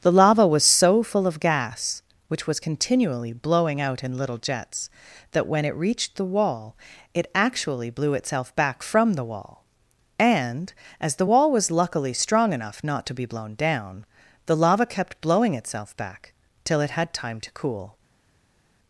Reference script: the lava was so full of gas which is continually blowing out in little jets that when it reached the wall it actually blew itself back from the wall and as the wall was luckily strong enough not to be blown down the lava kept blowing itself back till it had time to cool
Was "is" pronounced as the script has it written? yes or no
no